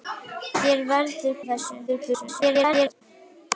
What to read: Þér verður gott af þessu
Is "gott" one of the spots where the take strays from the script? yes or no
yes